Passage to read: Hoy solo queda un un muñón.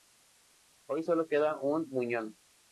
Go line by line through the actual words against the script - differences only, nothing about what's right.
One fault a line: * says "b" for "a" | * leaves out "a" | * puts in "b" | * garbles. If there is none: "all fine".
* leaves out "un"